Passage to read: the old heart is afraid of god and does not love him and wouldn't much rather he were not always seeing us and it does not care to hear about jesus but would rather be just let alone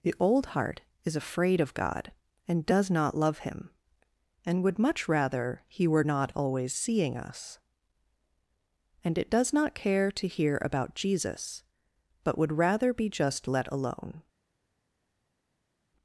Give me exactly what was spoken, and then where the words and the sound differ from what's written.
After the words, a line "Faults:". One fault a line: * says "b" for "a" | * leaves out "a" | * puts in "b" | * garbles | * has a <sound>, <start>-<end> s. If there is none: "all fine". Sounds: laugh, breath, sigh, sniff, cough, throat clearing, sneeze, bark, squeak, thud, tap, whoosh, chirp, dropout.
the old heart is afraid of god and does not love him and would much rather he were not always seeing us and it does not care to hear about jesus but would rather be just let alone
Faults:
* says "would" for "wouldn't"